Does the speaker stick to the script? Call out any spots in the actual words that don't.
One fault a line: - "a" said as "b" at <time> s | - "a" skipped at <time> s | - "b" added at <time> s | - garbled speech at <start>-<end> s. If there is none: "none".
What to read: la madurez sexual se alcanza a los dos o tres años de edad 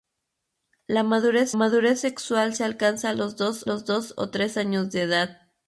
- "madurez" added at 1.5 s
- "los dos" added at 3.6 s